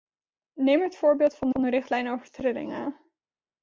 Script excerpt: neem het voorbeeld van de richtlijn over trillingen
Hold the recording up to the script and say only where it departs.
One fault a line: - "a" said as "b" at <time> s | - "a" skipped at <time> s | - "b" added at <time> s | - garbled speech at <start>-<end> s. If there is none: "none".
- "van" added at 1.5 s